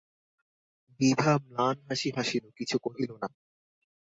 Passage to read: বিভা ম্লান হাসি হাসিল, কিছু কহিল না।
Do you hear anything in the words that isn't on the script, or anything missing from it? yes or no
no